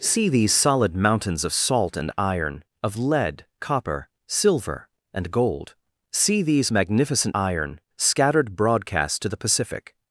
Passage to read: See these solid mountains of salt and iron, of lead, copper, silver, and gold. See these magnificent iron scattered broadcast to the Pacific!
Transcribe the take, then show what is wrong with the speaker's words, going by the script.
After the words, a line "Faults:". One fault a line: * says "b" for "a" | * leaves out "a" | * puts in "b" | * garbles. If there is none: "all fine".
See these solid mountains of salt and iron, of lead, copper, silver, and gold. See these magnificent iron scattered broadcast to the Pacific!
Faults:
all fine